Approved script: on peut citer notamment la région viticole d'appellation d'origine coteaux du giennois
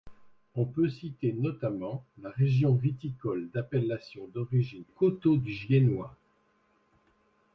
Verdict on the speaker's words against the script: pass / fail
pass